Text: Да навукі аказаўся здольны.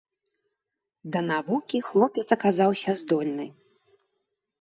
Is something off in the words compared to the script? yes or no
yes